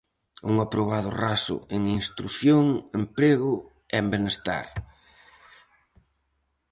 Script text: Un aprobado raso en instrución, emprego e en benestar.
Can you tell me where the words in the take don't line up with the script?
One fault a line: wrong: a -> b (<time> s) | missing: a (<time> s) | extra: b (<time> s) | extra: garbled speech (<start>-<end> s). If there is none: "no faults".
no faults